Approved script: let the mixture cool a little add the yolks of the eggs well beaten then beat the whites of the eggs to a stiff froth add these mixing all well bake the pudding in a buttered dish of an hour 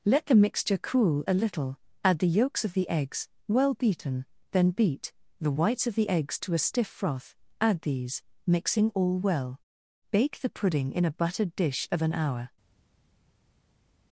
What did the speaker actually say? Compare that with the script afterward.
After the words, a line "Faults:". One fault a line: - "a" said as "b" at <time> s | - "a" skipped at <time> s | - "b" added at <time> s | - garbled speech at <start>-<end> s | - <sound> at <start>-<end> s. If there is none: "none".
let the mixture cool a little add the yolks of the eggs well beaten then beat the whites of the eggs to a stiff froth add these mixing all well bake the pudding in a buttered dish of an hour
Faults:
none